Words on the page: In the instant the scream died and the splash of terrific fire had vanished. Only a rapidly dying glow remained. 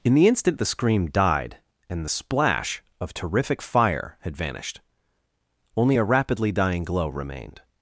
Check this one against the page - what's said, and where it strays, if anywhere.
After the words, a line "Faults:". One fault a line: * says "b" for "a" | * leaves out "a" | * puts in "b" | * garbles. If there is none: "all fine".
In the instant the scream died and the splash of terrific fire had vanished. Only a rapidly dying glow remained.
Faults:
all fine